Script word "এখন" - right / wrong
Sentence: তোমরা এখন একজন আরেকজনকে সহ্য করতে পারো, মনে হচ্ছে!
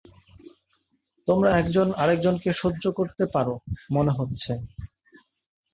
wrong